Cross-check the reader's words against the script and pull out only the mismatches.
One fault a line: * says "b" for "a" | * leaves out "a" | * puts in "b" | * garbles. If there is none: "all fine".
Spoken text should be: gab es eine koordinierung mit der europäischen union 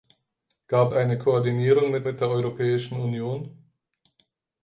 * leaves out "es"
* puts in "mit"